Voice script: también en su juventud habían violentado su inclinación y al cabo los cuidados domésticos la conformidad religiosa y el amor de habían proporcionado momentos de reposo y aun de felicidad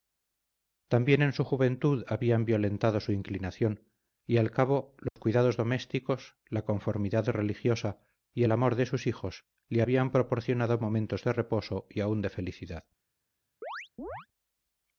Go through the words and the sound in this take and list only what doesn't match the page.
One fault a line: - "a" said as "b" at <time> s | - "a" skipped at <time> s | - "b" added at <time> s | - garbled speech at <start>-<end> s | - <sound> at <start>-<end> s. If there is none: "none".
- dropout at 5.1-5.2 s
- "sus hijos le" added at 8.9 s
- chirp at 13.6-14.3 s